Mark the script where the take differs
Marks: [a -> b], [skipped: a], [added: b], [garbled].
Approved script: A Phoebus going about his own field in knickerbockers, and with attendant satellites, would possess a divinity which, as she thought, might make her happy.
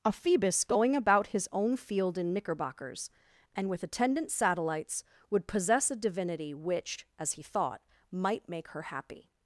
A Phoebus going about his own field in knickerbockers, and with attendant satellites, would possess a divinity which, as [she -> he] thought, might make her happy.